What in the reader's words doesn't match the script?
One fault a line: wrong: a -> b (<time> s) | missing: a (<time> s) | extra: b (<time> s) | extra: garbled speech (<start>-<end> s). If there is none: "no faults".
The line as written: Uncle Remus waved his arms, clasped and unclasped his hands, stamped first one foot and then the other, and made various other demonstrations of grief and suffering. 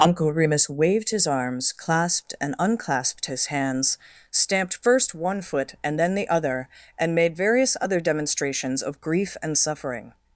no faults